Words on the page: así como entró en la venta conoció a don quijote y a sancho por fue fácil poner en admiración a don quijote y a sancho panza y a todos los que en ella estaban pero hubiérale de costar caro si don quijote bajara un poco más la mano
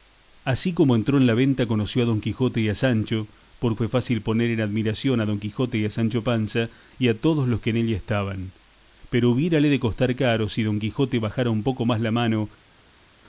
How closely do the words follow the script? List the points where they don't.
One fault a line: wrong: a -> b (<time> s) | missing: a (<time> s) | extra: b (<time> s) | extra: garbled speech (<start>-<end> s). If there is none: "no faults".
no faults